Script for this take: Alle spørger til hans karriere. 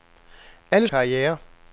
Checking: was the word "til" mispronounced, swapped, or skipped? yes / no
yes